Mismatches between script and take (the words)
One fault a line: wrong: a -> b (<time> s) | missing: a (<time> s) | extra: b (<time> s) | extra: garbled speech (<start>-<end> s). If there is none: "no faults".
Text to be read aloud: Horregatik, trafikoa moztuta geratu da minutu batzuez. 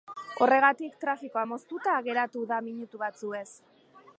no faults